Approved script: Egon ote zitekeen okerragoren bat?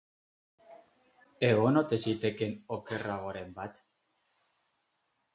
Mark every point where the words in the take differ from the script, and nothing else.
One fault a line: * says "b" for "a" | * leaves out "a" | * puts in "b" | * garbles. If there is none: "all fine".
all fine